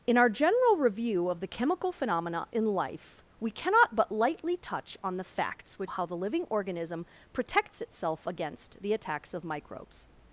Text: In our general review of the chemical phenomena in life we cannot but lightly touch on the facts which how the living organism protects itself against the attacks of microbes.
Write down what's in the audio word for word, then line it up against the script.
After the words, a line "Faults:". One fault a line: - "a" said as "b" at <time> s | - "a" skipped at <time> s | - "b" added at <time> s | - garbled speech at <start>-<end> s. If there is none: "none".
In our general review of the chemical phenomena in life we cannot but lightly touch on the facts which how the living organism protects itself against the attacks of microbes.
Faults:
none